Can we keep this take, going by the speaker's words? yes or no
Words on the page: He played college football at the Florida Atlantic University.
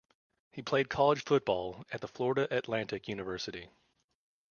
yes